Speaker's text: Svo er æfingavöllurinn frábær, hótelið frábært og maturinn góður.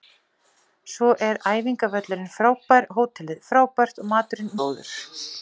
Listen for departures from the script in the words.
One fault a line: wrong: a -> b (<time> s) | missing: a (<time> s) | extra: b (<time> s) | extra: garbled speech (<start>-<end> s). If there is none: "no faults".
no faults